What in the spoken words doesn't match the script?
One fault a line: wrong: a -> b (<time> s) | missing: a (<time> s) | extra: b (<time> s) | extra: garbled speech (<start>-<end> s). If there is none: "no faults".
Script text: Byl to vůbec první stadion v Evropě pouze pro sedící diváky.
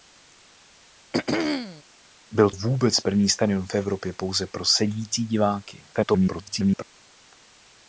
missing: to (2.5 s)
extra: garbled speech (5.9-6.8 s)